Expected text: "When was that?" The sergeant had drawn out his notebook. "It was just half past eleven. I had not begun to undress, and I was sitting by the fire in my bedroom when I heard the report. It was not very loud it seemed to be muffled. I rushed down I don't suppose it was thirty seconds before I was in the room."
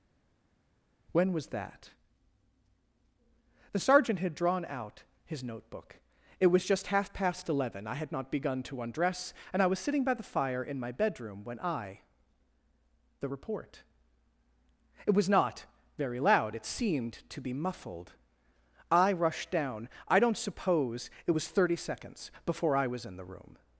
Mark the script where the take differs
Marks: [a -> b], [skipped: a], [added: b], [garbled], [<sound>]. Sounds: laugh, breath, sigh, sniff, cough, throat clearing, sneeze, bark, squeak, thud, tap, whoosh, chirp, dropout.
"When was that?" The sergeant had drawn out his notebook. "It was just half past eleven. I had not begun to undress, and I was sitting by the fire in my bedroom when I [skipped: heard] the report. It was not very loud it seemed to be muffled. I rushed down I don't suppose it was thirty seconds before I was in the room."